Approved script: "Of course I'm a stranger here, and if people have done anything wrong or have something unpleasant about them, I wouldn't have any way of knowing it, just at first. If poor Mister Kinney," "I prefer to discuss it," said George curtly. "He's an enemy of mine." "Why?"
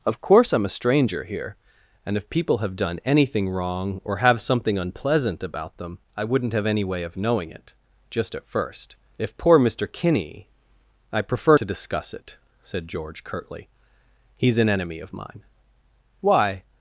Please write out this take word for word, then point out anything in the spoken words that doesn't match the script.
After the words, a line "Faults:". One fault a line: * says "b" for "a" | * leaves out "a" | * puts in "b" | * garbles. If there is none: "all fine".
"Of course I'm a stranger here, and if people have done anything wrong or have something unpleasant about them, I wouldn't have any way of knowing it, just at first. If poor Mister Kinney," "I prefer to discuss it," said George curtly. "He's an enemy of mine." "Why?"
Faults:
all fine